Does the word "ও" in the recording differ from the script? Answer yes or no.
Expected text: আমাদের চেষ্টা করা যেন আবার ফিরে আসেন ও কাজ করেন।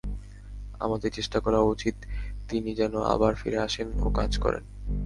no